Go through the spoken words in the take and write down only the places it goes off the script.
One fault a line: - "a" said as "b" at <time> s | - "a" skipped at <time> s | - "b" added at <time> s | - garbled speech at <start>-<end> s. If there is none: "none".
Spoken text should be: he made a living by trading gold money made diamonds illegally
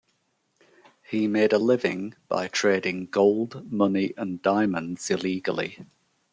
- "made" said as "and" at 4.2 s